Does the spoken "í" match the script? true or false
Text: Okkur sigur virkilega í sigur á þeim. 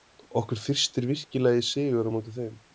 true